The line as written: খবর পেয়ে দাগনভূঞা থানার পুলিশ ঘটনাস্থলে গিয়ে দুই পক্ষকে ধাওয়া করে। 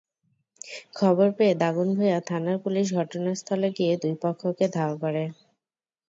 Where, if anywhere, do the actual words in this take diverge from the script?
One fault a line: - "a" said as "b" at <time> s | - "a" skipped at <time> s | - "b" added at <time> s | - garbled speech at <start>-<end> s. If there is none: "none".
none